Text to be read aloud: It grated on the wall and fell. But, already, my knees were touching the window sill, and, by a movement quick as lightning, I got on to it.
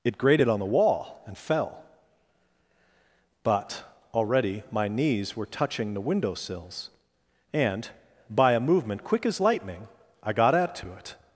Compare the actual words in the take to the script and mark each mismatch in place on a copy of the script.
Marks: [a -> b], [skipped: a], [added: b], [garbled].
It grated on the wall and fell. But, already, my knees were touching the window [sill, -> sills] and, by a movement quick as lightning, I got [on -> at] to it.